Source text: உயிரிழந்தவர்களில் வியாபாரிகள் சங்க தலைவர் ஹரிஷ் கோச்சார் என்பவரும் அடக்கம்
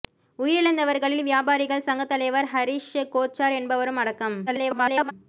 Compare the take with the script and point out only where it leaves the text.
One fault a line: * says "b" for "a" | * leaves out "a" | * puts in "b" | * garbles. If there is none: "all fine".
* garbles